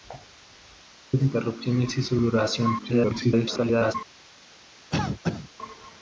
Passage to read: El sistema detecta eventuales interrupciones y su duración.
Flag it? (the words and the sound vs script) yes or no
yes